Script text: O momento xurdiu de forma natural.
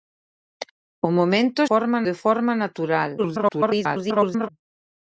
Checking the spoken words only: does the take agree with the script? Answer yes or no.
no